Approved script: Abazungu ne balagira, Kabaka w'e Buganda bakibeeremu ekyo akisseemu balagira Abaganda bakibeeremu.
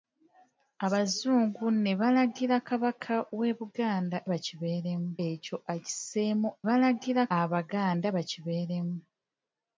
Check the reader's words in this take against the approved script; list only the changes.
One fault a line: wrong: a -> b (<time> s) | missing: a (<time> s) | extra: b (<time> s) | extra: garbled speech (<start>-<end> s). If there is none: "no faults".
no faults